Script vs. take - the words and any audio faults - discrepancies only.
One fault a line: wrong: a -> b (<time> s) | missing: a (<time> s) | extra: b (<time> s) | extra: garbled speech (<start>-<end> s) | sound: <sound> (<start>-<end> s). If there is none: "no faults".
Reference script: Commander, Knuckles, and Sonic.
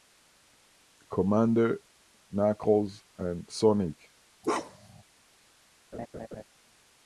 sound: bark (4.4-5.0 s)
sound: laugh (5.9-6.4 s)